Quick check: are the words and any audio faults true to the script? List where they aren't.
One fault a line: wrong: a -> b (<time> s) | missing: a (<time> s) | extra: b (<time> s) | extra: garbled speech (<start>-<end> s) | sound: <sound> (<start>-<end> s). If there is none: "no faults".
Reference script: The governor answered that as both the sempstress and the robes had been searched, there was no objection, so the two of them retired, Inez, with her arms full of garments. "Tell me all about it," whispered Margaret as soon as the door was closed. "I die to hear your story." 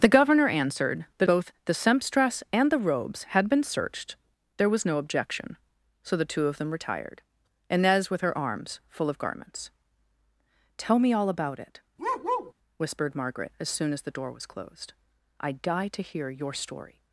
missing: as (1.3 s)
sound: bark (12.0-12.5 s)